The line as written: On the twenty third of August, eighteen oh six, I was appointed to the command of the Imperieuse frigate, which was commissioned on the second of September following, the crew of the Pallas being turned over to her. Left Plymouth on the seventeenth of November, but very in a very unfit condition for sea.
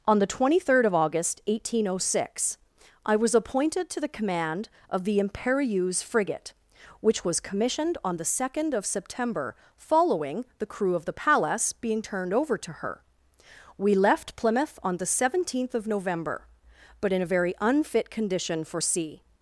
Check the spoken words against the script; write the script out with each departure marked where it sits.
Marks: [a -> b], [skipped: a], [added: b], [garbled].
On the twenty third of August, eighteen oh six, I was appointed to the command of the Imperieuse frigate, which was commissioned on the second of September following, the crew of the Pallas being turned over to her. [added: We] Left Plymouth on the seventeenth of November, but [skipped: very] in a very unfit condition for sea.